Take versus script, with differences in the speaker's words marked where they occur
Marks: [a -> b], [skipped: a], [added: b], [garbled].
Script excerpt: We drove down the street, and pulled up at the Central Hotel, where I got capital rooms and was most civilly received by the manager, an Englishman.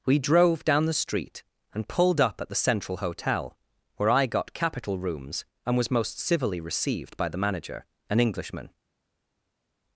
We drove down the street, and pulled up at the Central Hotel, where I got capital rooms and was most civilly received by the manager, an Englishman.